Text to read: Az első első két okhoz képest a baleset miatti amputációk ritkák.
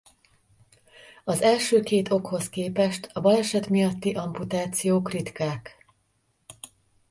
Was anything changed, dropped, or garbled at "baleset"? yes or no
no